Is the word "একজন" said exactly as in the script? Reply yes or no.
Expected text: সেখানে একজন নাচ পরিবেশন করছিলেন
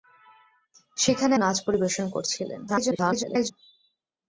no